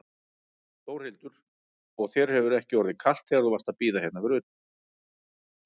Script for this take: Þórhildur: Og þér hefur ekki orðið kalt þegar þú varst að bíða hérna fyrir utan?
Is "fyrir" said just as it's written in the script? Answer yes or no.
yes